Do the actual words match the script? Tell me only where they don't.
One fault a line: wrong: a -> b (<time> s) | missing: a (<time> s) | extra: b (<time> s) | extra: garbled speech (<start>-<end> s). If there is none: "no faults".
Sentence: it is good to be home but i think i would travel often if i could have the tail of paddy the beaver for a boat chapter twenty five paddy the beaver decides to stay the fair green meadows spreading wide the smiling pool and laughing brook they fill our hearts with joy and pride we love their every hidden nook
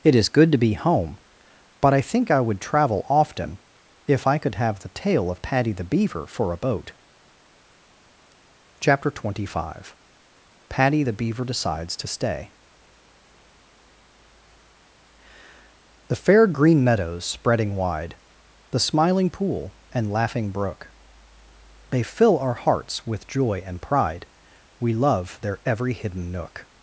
no faults